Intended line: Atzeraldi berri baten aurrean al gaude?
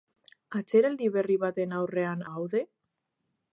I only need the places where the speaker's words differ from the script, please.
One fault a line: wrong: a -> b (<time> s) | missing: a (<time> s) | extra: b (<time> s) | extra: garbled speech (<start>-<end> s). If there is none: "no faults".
missing: al (2.2 s)